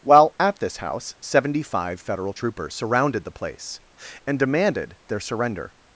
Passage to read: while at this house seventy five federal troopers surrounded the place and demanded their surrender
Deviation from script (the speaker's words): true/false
false